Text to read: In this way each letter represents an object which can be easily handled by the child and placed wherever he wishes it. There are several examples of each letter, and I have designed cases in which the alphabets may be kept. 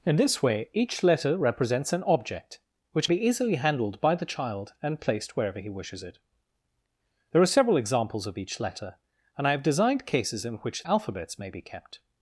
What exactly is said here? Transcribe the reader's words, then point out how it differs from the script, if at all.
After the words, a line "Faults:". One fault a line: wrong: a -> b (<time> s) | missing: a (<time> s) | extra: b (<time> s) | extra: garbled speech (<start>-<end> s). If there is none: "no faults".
In this way each letter represents an object which be easily handled by the child and placed wherever he wishes it. There are several examples of each letter, and I have designed cases in which alphabets may be kept.
Faults:
missing: can (3.1 s)
missing: the (10.9 s)